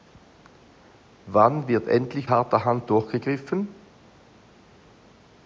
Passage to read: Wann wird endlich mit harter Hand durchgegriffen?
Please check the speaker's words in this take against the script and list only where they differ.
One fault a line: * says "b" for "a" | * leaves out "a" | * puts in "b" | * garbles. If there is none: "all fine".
* leaves out "mit"